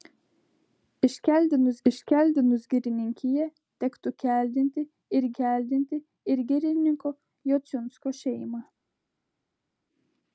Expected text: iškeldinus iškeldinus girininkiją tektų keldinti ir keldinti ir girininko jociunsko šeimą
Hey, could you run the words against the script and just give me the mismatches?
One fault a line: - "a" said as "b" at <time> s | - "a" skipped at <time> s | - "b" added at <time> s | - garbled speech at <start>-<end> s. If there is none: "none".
none